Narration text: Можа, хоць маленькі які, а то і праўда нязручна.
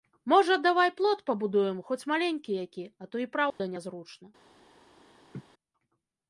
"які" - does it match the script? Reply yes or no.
yes